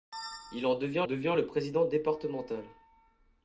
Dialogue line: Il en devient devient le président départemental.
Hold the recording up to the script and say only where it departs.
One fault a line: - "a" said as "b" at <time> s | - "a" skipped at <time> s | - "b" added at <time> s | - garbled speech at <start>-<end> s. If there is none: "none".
none